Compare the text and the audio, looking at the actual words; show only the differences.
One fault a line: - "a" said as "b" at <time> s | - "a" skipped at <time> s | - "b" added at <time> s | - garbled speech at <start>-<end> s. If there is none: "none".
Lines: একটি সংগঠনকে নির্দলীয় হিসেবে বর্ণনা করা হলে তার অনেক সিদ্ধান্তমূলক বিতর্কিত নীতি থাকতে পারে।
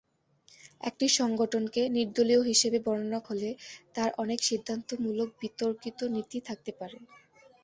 - "করা" skipped at 3.2 s